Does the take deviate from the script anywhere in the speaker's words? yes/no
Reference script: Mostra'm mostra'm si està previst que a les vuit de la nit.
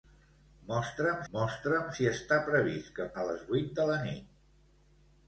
no